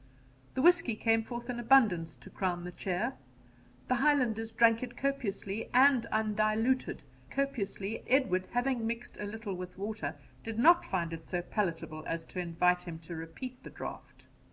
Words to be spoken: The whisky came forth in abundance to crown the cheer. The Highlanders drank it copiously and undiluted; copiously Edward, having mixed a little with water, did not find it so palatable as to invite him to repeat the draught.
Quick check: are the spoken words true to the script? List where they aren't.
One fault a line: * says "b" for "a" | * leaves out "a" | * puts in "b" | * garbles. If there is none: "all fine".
all fine